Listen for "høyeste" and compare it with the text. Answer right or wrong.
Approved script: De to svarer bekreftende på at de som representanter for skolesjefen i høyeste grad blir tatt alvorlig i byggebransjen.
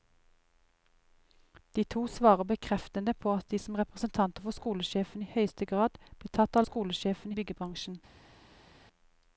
right